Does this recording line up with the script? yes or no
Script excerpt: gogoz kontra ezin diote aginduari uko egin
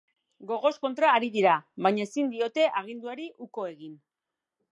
no